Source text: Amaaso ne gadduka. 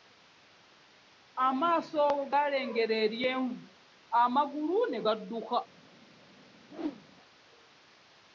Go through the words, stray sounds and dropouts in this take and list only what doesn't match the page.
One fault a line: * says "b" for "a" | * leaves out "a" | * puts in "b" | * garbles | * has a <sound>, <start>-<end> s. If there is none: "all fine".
* puts in "galengera eryenvu amagulu"
* has a whoosh, 6.7-7.1 s